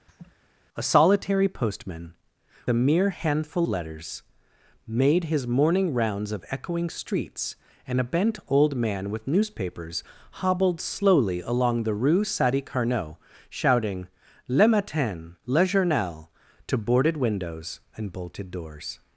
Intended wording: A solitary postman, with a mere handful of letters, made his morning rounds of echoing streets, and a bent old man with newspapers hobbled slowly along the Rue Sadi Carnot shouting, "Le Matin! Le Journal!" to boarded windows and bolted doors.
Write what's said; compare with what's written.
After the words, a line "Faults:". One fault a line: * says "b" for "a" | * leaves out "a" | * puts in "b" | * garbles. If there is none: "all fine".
A solitary postman, a mere handful letters, made his morning rounds of echoing streets, and a bent old man with newspapers hobbled slowly along the Rue Sadi Carnot shouting, "Le Matin! Le Journal!" to boarded windows and bolted doors.
Faults:
* leaves out "with"
* leaves out "of"